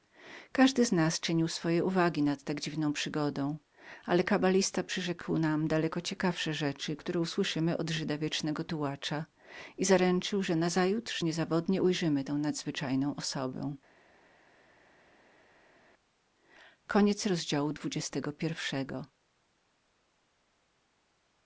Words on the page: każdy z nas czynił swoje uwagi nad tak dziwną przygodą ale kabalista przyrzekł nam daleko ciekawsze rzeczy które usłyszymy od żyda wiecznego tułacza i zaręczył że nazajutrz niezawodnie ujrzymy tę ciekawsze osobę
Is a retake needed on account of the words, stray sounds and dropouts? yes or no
yes